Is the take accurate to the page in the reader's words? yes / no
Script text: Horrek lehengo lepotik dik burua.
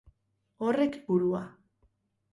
no